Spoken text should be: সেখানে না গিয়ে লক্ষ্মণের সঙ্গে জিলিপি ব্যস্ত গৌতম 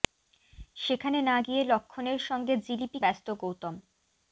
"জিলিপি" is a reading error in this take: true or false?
false